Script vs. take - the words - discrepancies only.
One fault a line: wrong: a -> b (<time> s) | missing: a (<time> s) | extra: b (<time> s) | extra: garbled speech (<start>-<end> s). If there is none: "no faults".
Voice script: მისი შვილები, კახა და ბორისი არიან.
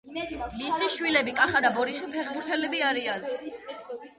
extra: ფეხბურთელები (2.2 s)